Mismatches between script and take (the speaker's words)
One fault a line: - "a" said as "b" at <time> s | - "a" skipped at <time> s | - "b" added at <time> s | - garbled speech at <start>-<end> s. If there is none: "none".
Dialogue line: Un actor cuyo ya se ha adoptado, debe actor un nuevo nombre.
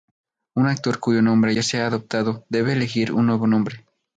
- "nombre" added at 1.2 s
- "actor" said as "elegir" at 2.7 s